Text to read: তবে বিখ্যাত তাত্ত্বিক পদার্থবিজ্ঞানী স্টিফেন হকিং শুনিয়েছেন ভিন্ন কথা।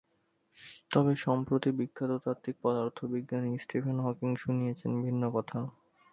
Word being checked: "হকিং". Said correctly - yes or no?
yes